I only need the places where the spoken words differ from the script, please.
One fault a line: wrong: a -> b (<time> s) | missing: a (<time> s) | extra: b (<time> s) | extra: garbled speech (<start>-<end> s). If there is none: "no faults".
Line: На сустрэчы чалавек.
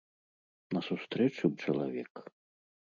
no faults